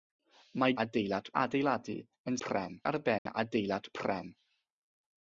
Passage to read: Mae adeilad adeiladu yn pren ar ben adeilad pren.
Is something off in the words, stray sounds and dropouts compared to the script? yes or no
yes